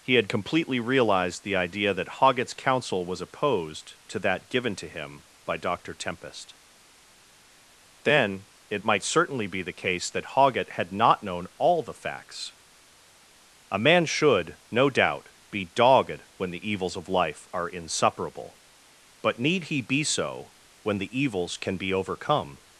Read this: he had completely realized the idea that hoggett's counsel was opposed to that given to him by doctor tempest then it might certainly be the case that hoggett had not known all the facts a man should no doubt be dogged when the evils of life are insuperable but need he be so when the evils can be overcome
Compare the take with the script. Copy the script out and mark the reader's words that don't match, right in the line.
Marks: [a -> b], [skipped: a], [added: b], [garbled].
he had completely realized the idea that hoggett's counsel was opposed to that given to him by doctor tempest then it might certainly be the case that hoggett had not known all the facts a man should no doubt be dogged when the evils of life are insuperable but need he be so when the evils can be overcome